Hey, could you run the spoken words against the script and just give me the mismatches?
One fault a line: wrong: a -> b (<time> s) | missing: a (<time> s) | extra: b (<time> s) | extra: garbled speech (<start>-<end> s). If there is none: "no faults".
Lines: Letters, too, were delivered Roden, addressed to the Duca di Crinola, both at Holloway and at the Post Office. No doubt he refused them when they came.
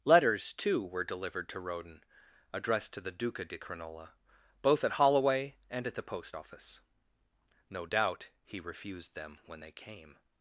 extra: to (1.5 s)